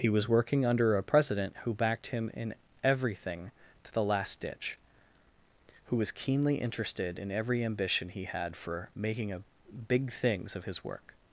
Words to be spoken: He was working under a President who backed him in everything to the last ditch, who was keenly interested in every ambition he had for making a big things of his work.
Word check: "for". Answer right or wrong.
right